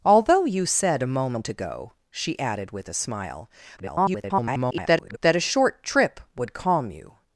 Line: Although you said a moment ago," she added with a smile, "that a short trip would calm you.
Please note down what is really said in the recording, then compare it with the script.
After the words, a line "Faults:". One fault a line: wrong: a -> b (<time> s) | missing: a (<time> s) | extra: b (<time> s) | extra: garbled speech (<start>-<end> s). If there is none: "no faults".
Although you said a moment ago," she added with a smile, [garbled] "that a short trip would calm you.
Faults:
extra: garbled speech (3.8-5.2 s)